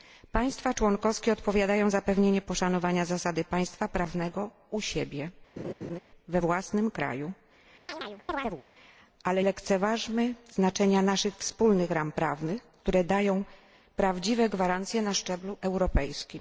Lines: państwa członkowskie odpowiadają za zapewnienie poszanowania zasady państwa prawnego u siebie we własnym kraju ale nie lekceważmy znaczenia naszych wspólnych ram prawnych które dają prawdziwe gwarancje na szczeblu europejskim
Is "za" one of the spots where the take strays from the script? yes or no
yes